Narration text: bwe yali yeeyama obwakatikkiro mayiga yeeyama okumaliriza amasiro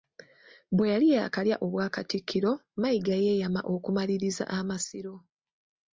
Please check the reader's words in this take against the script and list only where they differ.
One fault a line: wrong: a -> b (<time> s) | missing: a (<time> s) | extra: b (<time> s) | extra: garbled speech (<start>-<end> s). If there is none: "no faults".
wrong: yeeyama -> yaakalya (1.1 s)